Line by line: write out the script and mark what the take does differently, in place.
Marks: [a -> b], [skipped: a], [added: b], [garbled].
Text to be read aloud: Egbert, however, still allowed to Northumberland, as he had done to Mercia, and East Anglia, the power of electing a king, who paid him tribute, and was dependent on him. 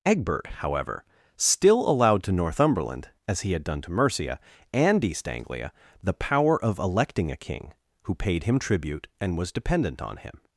Egbert, however, still allowed to Northumberland, as he had done to Mercia, and East Anglia, the power of electing a king, who paid him tribute, and was dependent on him.